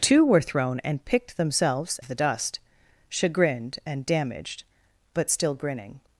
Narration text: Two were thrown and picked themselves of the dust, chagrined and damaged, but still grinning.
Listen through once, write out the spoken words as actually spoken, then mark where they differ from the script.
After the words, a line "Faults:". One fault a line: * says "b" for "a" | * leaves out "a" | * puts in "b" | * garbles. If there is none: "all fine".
Two were thrown and picked themselves of the dust, chagrined and damaged, but still grinning.
Faults:
all fine